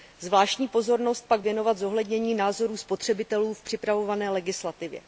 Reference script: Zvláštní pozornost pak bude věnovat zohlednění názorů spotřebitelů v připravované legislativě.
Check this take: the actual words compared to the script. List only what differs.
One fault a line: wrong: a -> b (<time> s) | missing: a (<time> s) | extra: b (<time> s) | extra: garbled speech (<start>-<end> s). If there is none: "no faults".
missing: bude (1.4 s)